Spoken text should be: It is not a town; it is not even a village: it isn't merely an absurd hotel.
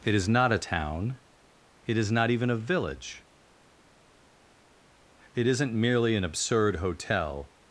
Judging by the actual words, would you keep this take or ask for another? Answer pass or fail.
pass